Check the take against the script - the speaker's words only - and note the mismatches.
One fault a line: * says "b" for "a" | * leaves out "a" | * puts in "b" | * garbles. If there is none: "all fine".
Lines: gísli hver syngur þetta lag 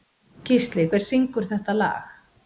all fine